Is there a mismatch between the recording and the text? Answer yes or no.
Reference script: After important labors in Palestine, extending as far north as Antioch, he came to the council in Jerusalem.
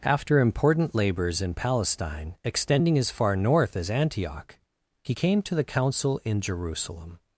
no